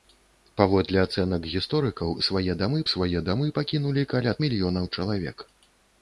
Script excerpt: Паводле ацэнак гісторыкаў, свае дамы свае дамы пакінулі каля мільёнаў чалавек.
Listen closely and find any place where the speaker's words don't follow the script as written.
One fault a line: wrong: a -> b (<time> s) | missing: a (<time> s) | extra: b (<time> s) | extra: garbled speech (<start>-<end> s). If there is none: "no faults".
no faults